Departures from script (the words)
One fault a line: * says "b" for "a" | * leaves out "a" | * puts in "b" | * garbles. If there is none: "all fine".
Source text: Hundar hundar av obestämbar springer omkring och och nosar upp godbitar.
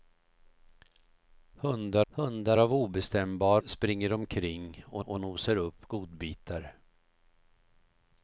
all fine